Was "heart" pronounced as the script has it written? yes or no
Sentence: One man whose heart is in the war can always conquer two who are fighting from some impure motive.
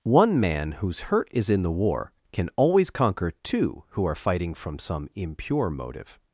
no